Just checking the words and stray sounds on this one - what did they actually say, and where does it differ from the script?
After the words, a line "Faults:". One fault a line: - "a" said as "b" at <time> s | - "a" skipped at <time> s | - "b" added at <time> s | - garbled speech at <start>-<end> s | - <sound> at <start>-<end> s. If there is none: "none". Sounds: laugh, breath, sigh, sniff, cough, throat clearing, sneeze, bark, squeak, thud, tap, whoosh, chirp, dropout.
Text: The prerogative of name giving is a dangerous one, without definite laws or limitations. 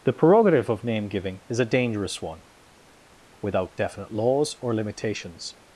The prerogative of name giving is a dangerous one, without definite laws or limitations.
Faults:
none